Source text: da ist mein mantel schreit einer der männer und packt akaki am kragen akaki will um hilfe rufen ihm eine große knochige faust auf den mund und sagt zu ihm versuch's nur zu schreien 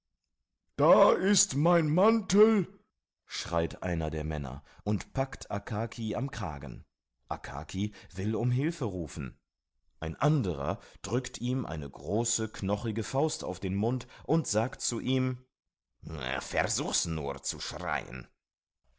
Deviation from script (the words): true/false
true